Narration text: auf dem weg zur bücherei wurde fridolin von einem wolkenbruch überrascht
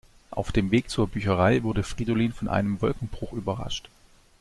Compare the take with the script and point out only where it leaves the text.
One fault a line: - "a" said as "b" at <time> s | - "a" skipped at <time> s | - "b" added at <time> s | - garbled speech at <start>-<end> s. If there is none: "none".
none